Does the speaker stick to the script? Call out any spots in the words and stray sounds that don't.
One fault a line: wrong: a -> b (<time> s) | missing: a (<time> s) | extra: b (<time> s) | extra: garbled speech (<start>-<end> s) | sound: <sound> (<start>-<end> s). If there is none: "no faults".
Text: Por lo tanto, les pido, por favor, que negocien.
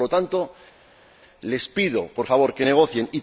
no faults